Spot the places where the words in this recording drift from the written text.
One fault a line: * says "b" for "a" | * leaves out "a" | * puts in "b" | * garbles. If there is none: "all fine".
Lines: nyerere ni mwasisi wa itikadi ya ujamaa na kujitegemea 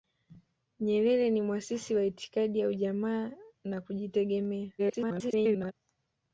* garbles